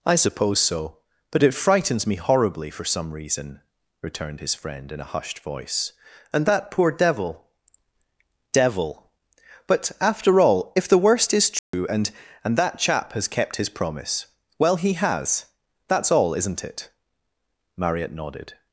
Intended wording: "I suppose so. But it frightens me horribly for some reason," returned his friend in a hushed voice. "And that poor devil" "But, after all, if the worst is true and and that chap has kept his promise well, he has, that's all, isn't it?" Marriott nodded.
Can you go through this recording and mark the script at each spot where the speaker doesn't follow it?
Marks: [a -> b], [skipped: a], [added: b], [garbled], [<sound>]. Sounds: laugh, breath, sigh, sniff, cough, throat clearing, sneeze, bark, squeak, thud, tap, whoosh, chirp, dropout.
"I suppose so. But it frightens me horribly for some reason," returned his friend in a hushed voice. "And that poor devil" [added: devil] "But, after all, if the worst is true [dropout] and and that chap has kept his promise well, he has, that's all, isn't it?" Marriott nodded.